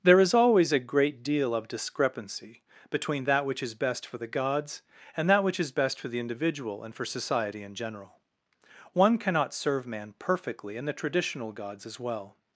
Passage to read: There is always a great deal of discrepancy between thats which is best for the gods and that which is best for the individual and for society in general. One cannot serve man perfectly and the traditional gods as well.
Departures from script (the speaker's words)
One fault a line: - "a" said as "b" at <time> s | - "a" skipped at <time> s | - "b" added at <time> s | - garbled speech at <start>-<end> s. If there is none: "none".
- "thats" said as "that" at 3.2 s